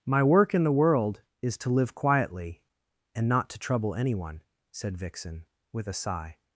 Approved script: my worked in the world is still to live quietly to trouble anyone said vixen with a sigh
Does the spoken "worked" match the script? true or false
false